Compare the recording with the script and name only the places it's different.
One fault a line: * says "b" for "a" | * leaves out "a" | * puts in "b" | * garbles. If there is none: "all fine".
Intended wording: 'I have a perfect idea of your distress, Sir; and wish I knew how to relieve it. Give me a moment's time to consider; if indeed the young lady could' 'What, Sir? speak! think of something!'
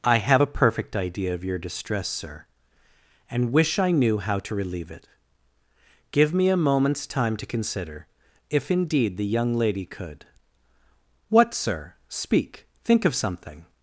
all fine